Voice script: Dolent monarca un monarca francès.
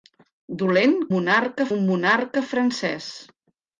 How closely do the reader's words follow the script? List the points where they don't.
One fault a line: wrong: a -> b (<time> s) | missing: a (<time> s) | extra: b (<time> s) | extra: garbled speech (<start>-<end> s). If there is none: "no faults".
no faults